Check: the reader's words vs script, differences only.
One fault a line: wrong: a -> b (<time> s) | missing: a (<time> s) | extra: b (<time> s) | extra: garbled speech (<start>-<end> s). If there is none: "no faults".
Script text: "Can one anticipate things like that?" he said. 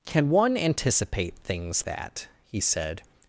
missing: like (1.9 s)